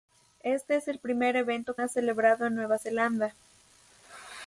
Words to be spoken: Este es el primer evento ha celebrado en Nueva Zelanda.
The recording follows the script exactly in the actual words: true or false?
true